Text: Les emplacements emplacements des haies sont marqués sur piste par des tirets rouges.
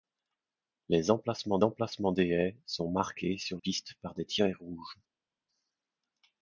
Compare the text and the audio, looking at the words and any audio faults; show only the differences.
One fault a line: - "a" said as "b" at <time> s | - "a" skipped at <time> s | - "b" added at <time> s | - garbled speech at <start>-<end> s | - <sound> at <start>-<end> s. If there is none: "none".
none